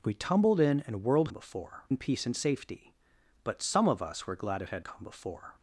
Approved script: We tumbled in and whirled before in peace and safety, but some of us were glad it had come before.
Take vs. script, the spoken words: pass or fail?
pass